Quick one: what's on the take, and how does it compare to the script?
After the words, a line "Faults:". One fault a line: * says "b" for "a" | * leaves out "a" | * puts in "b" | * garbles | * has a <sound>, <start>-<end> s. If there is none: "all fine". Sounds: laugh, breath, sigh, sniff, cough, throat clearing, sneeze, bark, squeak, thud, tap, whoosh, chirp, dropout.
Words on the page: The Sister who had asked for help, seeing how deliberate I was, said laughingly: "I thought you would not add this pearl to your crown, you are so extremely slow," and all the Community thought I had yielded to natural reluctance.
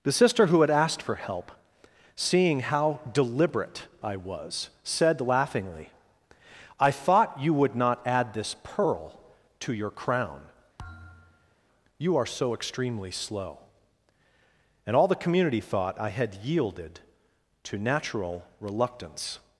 The Sister who had asked for help, seeing how deliberate I was, said laughingly: "I thought you would not add this pearl to your crown, you are so extremely slow," and all the Community thought I had yielded to natural reluctance.
Faults:
* has a thud, 10.8-11.6 s